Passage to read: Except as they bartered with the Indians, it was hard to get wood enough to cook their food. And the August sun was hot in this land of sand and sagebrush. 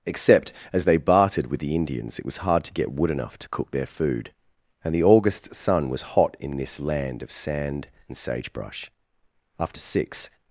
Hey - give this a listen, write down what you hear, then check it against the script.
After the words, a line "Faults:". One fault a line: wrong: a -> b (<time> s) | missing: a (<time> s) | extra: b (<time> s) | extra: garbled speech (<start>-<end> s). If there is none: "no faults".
Except as they bartered with the Indians, it was hard to get wood enough to cook their food. And the August sun was hot in this land of sand and sagebrush. After six
Faults:
extra: After six (9.6 s)